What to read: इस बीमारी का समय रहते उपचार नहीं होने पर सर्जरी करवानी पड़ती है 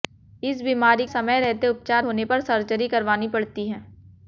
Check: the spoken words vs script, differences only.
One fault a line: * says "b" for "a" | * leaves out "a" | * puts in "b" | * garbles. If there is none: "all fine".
* leaves out "का"
* leaves out "नहीं"